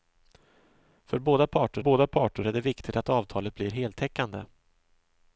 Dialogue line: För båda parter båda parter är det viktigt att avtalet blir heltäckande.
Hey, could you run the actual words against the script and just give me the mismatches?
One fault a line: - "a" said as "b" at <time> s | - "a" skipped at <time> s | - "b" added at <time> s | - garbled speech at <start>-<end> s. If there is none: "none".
none